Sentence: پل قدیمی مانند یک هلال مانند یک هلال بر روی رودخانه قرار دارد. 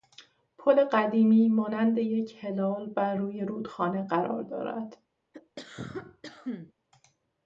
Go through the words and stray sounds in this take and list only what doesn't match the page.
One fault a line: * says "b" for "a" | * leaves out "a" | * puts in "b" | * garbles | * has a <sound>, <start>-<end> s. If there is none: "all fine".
* leaves out "مانند یک هلال"
* has a cough, 5.3-6.7 s